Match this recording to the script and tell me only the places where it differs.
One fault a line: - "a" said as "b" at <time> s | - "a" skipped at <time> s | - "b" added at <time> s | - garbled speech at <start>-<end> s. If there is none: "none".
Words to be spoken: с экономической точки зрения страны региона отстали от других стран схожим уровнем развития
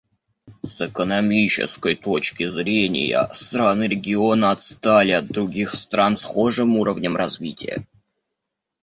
none